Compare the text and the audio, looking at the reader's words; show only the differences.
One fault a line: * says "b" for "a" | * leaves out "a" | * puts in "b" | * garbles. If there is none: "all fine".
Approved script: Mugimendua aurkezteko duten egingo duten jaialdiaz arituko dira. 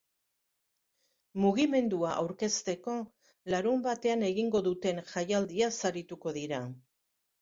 * says "larunbatean" for "duten"